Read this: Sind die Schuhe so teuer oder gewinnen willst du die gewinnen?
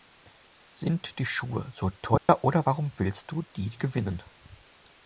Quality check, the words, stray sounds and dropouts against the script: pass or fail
fail